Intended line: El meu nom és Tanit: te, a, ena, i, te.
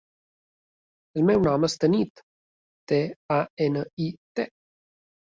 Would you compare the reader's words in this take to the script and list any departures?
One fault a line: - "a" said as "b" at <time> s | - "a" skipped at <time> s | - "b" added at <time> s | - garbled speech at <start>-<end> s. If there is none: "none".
none